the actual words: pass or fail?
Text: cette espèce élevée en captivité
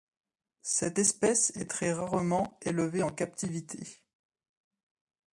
fail